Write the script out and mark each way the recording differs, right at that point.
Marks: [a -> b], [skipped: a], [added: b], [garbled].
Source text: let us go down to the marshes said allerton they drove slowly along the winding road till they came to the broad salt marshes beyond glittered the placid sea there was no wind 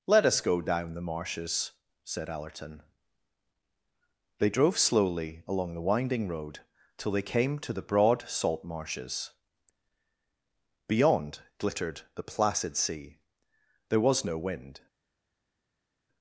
let us go down [skipped: to] the marshes said allerton they drove slowly along the winding road till they came to the broad salt marshes beyond glittered the placid sea there was no wind